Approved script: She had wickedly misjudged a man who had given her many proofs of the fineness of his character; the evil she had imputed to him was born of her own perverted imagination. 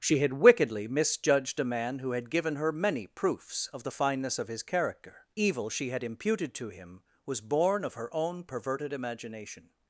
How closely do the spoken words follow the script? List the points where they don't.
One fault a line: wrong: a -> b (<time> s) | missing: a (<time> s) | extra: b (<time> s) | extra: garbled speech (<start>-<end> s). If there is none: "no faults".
missing: the (5.3 s)